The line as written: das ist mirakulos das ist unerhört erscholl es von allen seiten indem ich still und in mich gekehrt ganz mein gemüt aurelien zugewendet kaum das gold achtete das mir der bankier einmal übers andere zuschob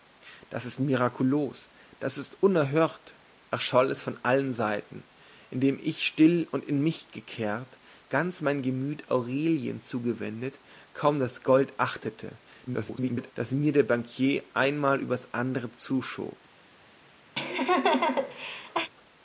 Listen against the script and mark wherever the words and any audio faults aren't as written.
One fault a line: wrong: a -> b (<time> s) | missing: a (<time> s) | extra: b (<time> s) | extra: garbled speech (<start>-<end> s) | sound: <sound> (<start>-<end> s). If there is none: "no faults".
extra: garbled speech (12.7-13.3 s)
sound: laugh (17.4-18.9 s)